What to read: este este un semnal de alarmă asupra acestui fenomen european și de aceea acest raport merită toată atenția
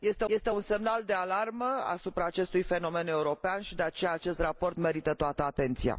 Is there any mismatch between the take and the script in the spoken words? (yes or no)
no